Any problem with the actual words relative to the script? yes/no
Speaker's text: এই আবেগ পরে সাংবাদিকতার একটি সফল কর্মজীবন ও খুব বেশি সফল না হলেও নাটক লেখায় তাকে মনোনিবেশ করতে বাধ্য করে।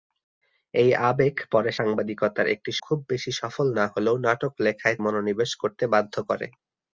yes